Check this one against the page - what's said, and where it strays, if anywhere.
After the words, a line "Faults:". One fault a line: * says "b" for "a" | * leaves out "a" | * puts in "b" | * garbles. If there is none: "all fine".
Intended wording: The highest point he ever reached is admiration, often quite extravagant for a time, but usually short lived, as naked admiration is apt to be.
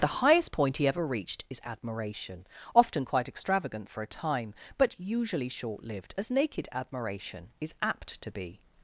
The highest point he ever reached is admiration, often quite extravagant for a time, but usually short lived, as naked admiration is apt to be.
Faults:
all fine